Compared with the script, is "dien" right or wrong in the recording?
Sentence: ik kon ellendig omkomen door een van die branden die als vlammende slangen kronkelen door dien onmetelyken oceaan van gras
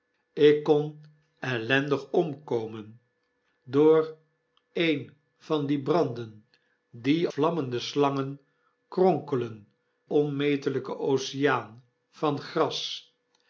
wrong